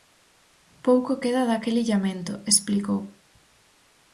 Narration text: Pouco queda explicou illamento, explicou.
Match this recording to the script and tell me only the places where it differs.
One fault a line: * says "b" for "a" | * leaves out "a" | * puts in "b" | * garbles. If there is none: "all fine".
* says "daquel" for "explicou"